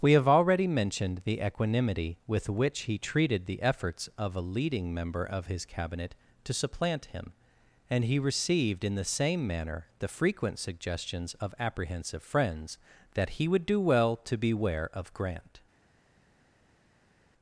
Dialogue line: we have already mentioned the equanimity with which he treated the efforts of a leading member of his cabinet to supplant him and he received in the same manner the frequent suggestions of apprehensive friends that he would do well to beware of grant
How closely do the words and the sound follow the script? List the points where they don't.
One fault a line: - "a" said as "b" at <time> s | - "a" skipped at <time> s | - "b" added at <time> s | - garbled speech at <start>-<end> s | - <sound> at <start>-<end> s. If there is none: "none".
none